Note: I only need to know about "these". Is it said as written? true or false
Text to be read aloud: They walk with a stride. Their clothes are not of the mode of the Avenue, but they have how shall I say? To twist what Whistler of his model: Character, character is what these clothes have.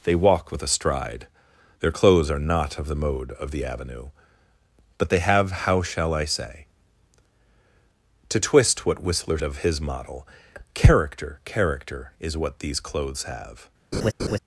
true